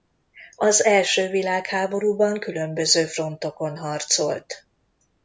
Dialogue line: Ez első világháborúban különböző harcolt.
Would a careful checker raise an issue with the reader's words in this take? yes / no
yes